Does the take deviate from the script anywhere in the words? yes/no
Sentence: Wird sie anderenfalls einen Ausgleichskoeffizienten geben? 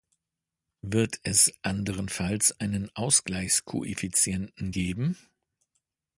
yes